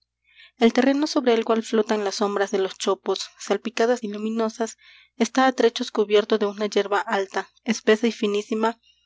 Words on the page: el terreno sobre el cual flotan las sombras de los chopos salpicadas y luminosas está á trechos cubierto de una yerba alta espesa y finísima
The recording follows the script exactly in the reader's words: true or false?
true